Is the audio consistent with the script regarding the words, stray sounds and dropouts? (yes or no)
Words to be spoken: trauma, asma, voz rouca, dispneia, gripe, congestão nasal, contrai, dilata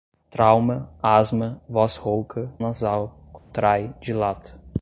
no